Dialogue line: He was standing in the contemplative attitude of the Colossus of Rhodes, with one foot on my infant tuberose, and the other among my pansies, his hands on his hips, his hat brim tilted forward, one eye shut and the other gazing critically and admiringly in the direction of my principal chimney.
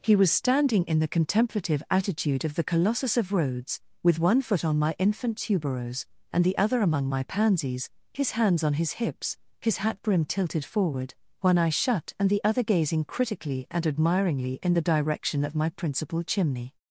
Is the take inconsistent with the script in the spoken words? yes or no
no